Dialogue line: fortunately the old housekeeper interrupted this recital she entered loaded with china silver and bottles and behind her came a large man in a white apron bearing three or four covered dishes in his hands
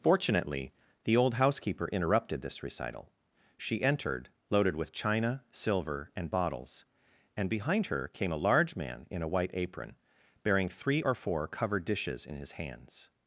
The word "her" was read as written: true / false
true